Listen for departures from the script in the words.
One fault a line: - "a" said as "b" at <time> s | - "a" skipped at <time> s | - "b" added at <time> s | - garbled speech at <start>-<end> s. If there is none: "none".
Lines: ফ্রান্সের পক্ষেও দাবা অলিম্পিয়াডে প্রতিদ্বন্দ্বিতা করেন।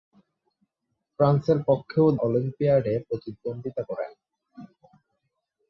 - "দাবা" skipped at 2.1 s